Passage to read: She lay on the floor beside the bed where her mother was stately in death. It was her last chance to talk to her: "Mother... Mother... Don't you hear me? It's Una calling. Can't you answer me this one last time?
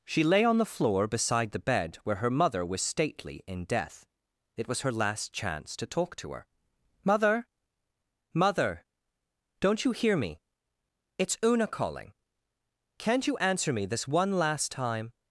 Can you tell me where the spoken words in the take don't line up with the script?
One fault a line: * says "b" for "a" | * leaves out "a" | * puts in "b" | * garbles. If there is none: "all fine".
all fine